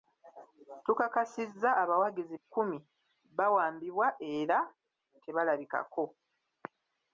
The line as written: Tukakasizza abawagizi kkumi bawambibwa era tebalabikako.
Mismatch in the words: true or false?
false